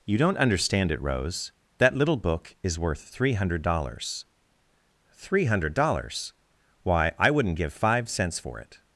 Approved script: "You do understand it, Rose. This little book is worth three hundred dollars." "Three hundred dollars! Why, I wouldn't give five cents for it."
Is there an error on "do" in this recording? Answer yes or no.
yes